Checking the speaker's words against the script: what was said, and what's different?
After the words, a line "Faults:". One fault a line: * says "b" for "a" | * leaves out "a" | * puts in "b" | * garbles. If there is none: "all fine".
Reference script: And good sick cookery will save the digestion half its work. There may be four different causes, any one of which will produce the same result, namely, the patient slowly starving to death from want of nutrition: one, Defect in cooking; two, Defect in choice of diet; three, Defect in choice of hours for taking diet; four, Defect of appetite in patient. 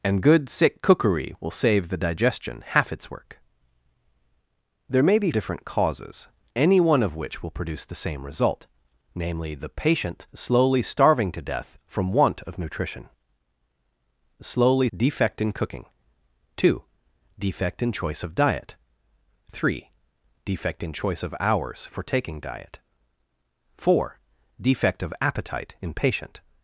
And good sick cookery will save the digestion half its work. There may be different causes, any one of which will produce the same result, namely, the patient slowly starving to death from want of nutrition: slowly, Defect in cooking; two, Defect in choice of diet; three, Defect in choice of hours for taking diet; four, Defect of appetite in patient.
Faults:
* leaves out "four"
* says "slowly" for "one"